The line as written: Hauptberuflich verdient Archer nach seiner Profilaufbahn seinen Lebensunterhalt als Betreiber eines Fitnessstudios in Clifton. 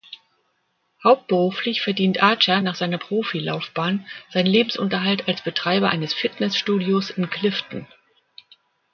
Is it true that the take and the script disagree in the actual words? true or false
false